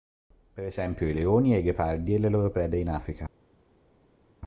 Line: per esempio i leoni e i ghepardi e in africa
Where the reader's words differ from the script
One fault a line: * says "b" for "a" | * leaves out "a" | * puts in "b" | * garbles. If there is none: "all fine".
* puts in "le loro prede"